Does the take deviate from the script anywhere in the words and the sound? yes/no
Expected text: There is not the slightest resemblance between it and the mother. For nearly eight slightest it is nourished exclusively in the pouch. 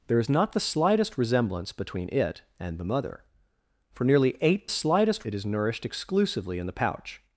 no